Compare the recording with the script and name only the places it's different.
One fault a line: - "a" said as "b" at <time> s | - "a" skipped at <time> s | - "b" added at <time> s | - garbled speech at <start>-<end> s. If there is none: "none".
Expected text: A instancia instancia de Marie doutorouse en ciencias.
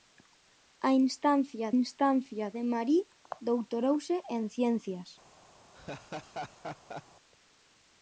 none